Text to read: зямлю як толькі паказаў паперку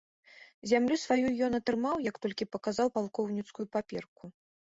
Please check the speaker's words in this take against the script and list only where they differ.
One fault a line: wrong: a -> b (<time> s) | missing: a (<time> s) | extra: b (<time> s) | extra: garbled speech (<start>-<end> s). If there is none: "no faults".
extra: сваю ён атрымаў (1.0 s)
extra: палкоўніцкую (3.0 s)